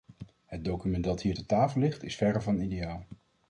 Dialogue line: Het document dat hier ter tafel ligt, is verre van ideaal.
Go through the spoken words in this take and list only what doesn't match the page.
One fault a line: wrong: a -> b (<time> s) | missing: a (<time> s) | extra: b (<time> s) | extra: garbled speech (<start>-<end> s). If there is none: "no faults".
no faults